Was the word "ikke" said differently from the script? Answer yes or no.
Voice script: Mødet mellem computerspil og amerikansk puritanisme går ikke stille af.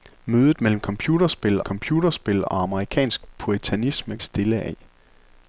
yes